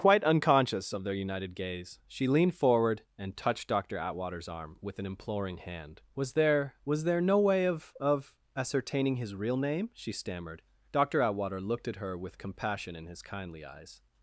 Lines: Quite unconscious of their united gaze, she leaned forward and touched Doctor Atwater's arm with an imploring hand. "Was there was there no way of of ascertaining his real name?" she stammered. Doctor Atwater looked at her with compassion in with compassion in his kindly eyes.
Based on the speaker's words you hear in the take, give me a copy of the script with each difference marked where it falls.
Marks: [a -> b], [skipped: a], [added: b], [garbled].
Quite unconscious of their united gaze, she leaned forward and touched Doctor Atwater's arm with an imploring hand. "Was there was there no way of of ascertaining his real name?" she stammered. Doctor Atwater looked at her with compassion in [skipped: with compassion in] his kindly eyes.